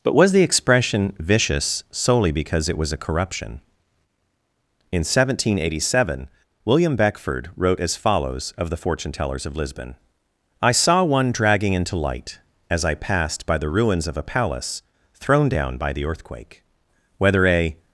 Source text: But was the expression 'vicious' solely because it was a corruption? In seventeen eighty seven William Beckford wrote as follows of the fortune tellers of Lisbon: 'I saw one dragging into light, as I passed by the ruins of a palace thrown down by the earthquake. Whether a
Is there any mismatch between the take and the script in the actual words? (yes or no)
no